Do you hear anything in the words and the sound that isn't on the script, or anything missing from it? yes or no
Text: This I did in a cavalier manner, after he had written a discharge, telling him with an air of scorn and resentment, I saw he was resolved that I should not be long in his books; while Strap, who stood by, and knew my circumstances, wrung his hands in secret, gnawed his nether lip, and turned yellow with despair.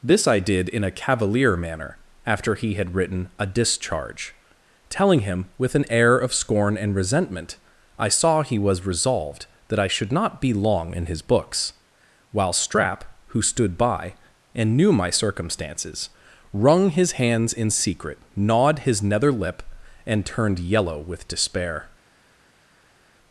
no